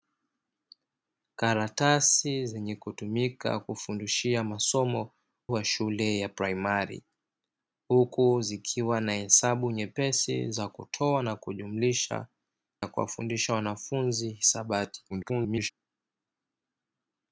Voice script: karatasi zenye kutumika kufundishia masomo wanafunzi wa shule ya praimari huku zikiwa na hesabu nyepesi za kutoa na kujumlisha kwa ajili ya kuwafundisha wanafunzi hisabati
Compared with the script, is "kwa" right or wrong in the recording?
wrong